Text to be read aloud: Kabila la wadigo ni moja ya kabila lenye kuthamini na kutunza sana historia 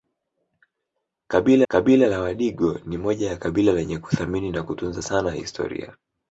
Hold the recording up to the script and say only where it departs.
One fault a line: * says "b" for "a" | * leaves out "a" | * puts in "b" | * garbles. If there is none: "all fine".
* puts in "kabila"